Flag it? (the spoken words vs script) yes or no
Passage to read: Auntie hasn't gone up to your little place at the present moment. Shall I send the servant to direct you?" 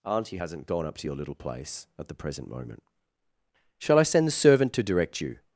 no